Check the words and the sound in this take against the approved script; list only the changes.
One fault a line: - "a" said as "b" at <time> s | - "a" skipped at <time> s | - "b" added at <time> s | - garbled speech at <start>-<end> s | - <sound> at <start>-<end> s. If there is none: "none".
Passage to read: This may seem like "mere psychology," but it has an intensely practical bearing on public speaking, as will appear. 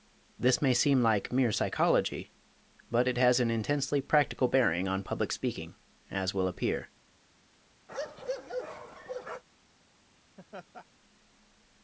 - bark at 7.9-9.4 s
- laugh at 10.4-10.9 s